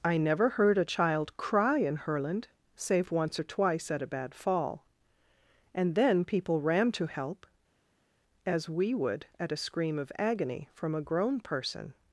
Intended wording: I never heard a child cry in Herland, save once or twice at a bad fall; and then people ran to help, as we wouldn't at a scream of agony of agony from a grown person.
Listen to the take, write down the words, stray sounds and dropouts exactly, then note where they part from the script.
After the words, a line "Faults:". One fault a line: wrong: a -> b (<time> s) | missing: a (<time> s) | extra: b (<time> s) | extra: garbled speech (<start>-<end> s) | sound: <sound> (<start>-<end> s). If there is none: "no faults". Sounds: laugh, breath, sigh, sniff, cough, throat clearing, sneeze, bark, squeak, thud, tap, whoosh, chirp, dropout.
I never heard a child cry in Herland, save once or twice at a bad fall; and then people ran to help, as we would at a scream of agony from a grown person.
Faults:
wrong: wouldn't -> would (8.9 s)
missing: of agony (10.7 s)